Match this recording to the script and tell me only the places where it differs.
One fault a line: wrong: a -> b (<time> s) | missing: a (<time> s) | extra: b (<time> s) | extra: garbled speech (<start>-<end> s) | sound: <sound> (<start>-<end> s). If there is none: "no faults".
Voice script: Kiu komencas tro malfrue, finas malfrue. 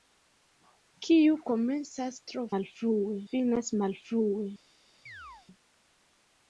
sound: chirp (5.1-5.5 s)